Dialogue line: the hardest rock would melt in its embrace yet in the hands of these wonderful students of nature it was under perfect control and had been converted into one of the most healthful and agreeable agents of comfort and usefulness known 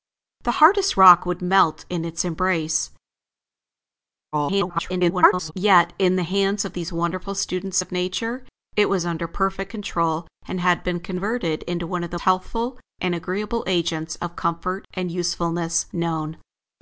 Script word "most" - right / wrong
wrong